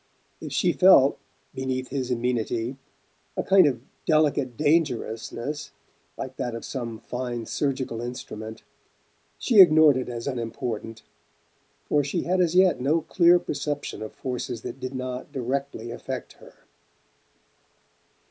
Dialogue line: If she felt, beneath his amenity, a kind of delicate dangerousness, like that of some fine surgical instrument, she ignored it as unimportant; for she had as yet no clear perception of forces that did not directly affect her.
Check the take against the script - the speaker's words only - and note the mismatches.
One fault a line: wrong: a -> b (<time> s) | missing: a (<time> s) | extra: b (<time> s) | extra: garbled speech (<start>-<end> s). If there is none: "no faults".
no faults